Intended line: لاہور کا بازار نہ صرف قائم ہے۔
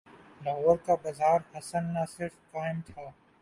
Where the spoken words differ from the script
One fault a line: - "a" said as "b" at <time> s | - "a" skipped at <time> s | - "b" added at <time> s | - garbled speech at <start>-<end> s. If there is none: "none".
- "حسن" added at 1.5 s
- "ہے" said as "تھا" at 2.9 s